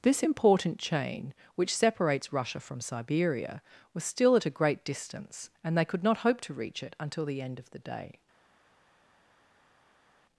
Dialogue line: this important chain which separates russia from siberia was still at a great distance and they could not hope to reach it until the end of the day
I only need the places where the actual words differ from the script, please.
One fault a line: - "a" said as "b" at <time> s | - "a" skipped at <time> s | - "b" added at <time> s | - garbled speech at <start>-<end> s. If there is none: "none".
none